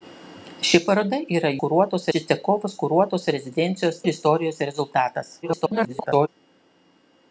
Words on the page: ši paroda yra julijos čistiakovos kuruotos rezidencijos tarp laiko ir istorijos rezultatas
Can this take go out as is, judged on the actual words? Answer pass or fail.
fail